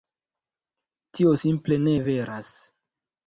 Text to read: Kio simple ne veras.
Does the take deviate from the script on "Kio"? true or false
true